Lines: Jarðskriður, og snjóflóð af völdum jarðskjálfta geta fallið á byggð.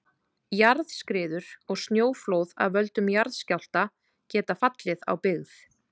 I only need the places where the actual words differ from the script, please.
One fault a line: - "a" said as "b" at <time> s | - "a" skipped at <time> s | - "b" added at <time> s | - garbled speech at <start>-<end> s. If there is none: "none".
none